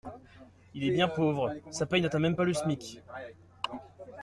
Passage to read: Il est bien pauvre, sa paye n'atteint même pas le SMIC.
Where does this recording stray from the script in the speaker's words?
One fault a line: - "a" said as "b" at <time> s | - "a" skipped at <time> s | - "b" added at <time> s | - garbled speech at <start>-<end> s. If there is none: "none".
none